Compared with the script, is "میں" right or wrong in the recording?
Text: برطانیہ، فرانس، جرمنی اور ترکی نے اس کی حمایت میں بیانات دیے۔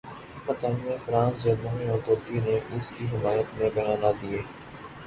right